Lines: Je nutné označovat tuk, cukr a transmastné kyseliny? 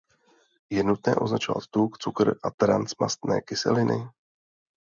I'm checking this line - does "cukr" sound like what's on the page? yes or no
yes